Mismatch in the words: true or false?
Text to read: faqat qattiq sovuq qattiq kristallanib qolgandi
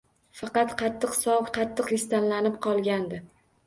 false